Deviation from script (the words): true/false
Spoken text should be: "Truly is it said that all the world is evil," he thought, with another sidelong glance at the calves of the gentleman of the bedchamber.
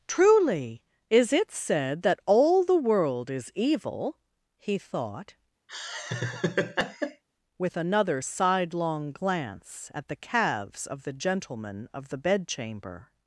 false